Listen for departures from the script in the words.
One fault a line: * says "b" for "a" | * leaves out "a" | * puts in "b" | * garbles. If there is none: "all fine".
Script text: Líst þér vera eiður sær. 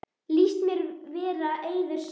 * says "mér" for "þér"